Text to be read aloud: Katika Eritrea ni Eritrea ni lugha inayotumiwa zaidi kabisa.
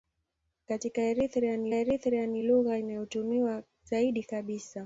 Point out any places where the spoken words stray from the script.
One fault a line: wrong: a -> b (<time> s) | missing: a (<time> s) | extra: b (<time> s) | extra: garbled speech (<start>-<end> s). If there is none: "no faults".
no faults